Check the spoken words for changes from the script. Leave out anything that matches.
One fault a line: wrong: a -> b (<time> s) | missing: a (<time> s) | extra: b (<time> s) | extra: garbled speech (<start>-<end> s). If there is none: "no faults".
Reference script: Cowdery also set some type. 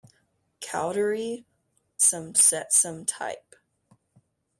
wrong: also -> some (2.0 s)